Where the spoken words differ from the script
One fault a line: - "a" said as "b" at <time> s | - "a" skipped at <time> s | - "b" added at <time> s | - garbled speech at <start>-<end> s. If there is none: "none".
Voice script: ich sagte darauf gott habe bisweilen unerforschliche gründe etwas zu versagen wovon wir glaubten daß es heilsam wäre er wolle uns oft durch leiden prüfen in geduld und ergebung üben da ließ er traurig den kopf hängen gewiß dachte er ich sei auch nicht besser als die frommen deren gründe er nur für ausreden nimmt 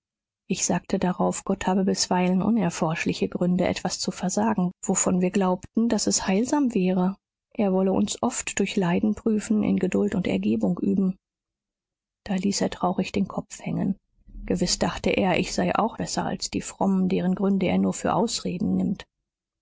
- "nicht" skipped at 16.0 s